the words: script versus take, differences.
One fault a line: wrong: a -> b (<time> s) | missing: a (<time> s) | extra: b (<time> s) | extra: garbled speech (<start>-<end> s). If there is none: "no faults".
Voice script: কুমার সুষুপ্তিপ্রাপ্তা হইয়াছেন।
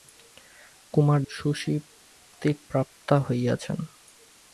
no faults